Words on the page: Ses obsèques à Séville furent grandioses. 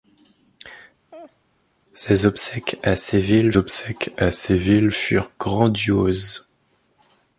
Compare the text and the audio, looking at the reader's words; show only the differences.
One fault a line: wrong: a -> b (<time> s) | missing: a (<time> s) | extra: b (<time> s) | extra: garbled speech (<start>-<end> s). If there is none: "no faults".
extra: obsèques à Séville (3.6 s)